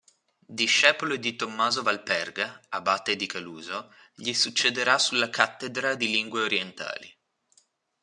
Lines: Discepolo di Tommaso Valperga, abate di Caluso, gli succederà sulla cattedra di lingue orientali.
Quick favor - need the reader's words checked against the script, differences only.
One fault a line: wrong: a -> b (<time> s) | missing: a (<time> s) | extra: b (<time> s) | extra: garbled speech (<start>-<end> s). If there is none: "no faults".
no faults